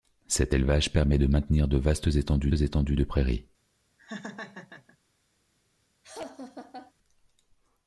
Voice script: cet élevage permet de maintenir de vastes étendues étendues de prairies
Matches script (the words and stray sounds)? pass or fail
fail